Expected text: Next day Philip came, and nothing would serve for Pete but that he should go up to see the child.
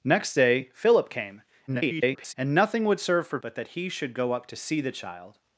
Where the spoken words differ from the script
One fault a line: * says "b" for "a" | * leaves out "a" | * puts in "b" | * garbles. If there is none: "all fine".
* garbles
* leaves out "Pete"